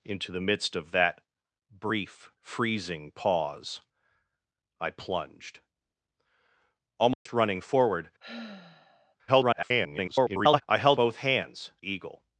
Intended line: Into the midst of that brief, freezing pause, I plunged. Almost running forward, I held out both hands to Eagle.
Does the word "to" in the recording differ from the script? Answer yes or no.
yes